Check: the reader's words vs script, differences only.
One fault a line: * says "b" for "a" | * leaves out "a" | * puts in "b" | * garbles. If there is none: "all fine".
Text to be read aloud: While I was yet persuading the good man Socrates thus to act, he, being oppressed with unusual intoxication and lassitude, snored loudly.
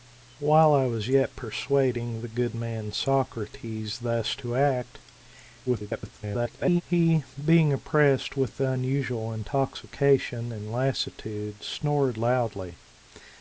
* garbles